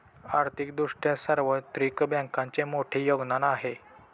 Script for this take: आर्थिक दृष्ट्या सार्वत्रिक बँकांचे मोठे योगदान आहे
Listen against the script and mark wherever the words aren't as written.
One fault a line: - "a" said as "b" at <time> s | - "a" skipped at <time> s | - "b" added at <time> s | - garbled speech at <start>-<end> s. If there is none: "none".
none